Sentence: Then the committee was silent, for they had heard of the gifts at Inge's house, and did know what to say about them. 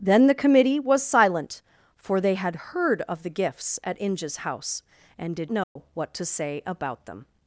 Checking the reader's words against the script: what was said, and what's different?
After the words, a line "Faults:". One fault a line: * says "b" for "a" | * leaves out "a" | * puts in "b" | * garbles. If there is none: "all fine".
Then the committee was silent, for they had heard of the gifts at Inge's house, and did know what to say about them.
Faults:
all fine